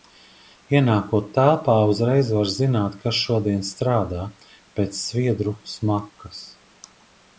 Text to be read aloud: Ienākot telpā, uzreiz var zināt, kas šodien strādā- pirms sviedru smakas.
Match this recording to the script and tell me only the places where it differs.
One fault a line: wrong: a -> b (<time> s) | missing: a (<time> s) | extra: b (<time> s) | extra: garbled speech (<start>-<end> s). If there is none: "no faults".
wrong: pirms -> pēc (4.8 s)